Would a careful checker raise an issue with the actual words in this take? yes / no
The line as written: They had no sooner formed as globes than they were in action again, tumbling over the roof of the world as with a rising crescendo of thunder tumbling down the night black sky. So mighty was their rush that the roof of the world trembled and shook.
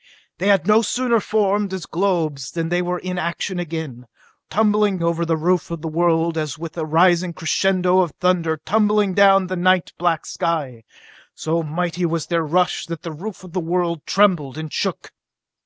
no